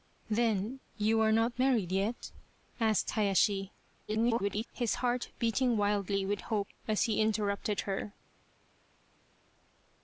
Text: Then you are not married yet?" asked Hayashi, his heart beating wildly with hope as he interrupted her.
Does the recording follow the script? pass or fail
fail